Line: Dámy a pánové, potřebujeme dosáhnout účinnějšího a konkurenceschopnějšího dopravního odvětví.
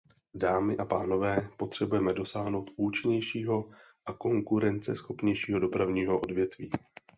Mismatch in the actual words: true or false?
false